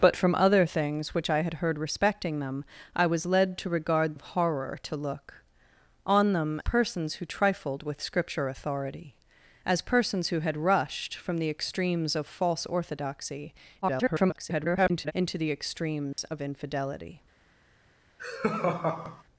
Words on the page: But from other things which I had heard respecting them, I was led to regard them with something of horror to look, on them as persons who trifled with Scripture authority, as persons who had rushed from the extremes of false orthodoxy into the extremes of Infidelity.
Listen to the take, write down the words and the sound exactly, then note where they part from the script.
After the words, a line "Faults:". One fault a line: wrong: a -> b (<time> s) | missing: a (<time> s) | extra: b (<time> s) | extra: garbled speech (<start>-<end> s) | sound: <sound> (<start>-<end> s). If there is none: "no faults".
But from other things which I had heard respecting them, I was led to regard of horror to look, on them persons who trifled with Scripture authority, as persons who had rushed from the extremes of false orthodoxy [garbled] into the extremes of Infidelity.
Faults:
missing: them with something (4.2 s)
missing: as (6.6 s)
extra: garbled speech (13.8-15.1 s)
sound: dropout (16.1-16.2 s)
sound: laugh (18.2-19.2 s)